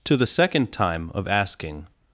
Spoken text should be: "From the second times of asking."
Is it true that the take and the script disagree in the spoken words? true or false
true